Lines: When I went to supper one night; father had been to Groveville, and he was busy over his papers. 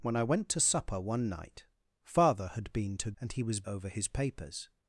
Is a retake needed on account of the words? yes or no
yes